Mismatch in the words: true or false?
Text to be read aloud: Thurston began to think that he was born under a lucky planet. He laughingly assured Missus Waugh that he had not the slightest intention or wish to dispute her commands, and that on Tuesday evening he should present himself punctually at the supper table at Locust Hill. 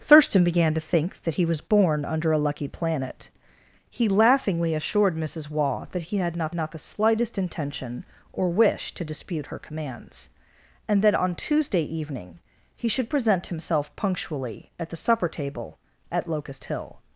true